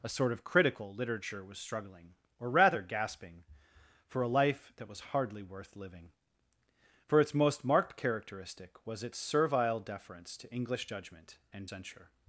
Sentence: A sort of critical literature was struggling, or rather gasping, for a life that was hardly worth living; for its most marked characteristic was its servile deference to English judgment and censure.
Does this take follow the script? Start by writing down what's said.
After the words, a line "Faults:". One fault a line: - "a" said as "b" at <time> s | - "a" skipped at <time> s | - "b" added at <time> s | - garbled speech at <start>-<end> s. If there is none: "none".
A sort of critical literature was struggling, or rather gasping, for a life that was hardly worth living; for its most marked characteristic was its servile deference to English judgment and censure.
Faults:
none